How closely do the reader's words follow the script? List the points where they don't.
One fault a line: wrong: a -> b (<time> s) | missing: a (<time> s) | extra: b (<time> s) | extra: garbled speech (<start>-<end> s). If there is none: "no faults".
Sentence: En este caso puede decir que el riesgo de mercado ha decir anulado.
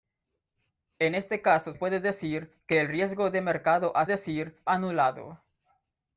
no faults